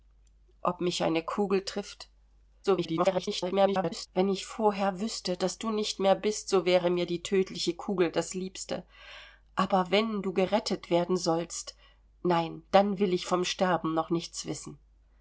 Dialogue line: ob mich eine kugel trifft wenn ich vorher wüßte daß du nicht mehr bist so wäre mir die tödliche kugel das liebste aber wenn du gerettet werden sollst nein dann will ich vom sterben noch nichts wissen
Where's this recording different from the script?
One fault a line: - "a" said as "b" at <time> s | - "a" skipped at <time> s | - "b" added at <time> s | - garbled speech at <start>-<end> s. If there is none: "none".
- garbled speech at 2.6-4.1 s